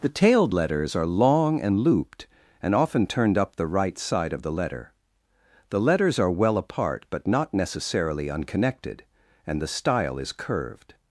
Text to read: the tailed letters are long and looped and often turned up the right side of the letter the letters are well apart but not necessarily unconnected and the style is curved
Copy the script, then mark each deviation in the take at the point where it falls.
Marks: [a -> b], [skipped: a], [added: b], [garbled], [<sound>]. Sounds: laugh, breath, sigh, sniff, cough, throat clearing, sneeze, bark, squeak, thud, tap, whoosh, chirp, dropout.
the tailed letters are long and looped and often turned up the right side of the letter the letters are well apart but not necessarily unconnected and the style is curved